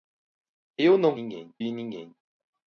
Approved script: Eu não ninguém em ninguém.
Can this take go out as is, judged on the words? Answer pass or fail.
pass